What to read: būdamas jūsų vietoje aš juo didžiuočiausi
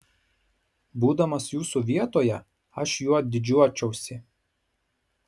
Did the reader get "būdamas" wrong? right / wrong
right